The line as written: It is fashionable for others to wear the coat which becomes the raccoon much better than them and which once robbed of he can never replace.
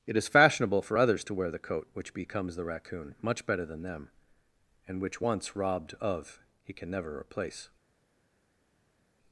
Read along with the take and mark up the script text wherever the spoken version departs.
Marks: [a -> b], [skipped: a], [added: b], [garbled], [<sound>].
It is fashionable for others to wear the coat which becomes the raccoon much better than them and which once robbed of he can never replace.